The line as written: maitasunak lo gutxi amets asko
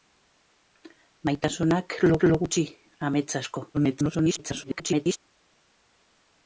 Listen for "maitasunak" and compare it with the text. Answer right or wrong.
right